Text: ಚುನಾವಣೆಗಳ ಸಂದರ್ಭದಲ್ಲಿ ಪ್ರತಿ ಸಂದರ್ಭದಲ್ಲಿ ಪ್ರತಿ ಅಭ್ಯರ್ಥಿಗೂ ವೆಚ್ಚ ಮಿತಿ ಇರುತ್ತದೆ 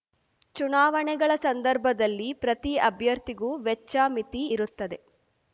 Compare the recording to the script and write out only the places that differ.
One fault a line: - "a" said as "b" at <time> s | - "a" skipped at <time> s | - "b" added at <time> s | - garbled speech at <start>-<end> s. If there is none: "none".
- "ಸಂದರ್ಭದಲ್ಲಿ ಪ್ರತಿ" skipped at 2.8 s